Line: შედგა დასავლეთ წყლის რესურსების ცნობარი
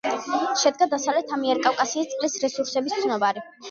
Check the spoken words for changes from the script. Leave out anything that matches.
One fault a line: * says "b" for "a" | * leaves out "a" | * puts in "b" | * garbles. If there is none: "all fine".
* puts in "ამიერკავკასიის"